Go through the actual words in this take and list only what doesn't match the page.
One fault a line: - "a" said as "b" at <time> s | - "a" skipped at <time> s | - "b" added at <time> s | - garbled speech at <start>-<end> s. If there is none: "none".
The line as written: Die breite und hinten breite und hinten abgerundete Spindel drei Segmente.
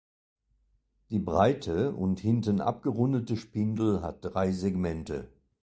- "breite und hinten" skipped at 2.6 s
- "hat" added at 4.0 s